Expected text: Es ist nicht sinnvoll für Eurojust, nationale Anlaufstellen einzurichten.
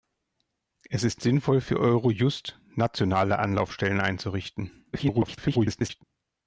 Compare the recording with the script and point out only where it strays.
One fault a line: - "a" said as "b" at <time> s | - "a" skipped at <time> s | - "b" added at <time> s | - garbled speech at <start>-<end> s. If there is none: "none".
- "nicht" skipped at 1.2 s
- garbled speech at 4.9-6.0 s